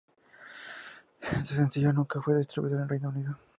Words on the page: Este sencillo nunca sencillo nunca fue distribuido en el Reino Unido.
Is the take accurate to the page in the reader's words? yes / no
no